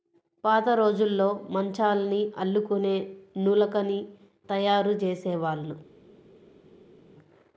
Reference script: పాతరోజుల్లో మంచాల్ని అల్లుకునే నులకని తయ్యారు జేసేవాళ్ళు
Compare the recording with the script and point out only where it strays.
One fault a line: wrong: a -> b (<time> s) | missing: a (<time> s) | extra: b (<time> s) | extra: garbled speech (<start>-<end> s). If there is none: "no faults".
no faults